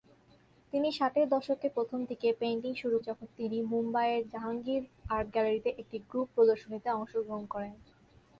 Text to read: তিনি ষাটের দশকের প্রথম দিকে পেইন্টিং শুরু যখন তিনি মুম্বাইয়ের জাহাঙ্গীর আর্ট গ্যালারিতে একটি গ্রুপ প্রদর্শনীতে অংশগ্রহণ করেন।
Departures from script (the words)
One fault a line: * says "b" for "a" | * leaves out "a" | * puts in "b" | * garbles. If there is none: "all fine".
all fine